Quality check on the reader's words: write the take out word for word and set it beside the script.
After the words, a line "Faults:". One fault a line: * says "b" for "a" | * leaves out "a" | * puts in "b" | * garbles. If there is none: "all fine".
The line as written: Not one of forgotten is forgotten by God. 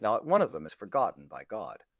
Not one of them is forgotten by God.
Faults:
* says "them" for "forgotten"